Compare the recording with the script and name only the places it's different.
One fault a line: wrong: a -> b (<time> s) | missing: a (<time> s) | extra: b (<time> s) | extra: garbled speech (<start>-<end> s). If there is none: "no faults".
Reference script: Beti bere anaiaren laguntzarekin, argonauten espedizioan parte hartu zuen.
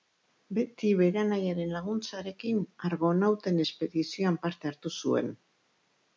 no faults